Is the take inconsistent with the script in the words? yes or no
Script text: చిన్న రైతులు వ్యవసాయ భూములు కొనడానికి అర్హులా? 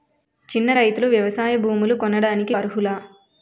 no